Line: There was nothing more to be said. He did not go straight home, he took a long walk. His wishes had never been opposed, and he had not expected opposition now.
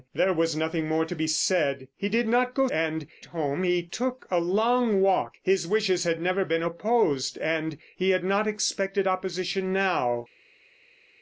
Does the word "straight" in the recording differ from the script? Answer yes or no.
yes